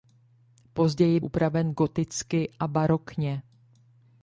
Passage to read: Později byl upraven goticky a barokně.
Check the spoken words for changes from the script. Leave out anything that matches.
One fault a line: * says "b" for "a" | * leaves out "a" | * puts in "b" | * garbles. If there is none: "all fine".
* leaves out "byl"